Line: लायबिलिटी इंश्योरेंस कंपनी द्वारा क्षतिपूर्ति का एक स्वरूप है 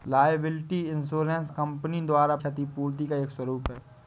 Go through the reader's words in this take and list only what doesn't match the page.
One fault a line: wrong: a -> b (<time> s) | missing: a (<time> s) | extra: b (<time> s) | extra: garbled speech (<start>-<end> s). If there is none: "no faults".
no faults